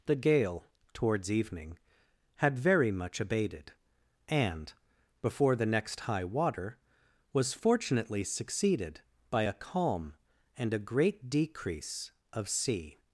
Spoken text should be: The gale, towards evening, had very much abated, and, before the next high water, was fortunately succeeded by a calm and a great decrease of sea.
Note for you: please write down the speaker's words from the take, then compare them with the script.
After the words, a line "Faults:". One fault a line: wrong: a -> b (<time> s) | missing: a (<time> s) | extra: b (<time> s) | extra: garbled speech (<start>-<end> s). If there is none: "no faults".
The gale, towards evening, had very much abated, and, before the next high water, was fortunately succeeded by a calm and a great decrease of sea.
Faults:
no faults